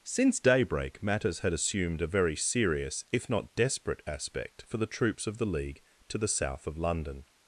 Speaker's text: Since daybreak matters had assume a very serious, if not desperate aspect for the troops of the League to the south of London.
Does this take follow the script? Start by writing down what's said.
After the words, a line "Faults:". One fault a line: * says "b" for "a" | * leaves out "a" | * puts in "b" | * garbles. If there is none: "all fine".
Since daybreak matters had assumed a very serious, if not desperate aspect for the troops of the League to the south of London.
Faults:
* says "assumed" for "assume"